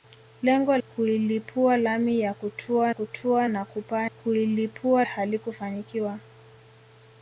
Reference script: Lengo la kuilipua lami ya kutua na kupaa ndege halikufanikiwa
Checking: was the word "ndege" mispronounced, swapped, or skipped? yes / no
yes